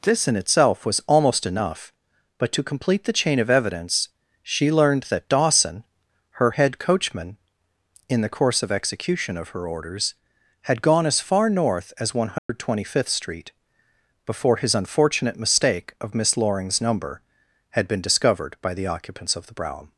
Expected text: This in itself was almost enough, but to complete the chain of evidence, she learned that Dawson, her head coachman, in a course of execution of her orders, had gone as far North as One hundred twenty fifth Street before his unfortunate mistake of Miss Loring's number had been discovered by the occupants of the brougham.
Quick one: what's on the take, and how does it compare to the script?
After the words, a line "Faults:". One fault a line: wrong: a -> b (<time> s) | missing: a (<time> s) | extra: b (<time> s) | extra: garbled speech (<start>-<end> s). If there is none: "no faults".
This in itself was almost enough, but to complete the chain of evidence, she learned that Dawson, her head coachman, in the course of execution of her orders, had gone as far North as One hundred twenty fifth Street before his unfortunate mistake of Miss Loring's number had been discovered by the occupants of the brougham.
Faults:
wrong: a -> the (8.2 s)